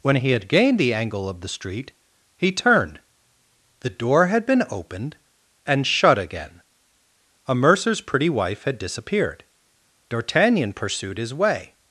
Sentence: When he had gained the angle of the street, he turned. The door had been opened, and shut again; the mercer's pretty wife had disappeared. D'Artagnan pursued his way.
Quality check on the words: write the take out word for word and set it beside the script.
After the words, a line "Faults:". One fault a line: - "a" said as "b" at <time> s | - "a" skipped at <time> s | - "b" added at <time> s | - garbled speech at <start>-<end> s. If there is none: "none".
When he had gained the angle of the street, he turned. The door had been opened, and shut again; a mercer's pretty wife had disappeared. D'Artagnan pursued his way.
Faults:
- "the" said as "a" at 7.5 s